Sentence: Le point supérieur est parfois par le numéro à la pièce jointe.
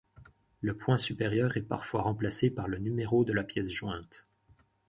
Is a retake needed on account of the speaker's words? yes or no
yes